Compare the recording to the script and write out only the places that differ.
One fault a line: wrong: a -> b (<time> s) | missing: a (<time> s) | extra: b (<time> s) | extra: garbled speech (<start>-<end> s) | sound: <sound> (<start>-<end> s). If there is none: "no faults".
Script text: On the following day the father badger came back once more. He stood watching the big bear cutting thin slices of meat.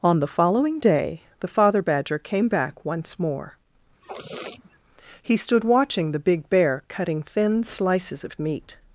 sound: sniff (4.0-4.8 s)